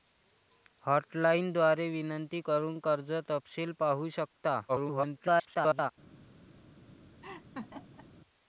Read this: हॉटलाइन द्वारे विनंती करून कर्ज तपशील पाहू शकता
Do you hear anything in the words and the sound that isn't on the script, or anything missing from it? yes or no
yes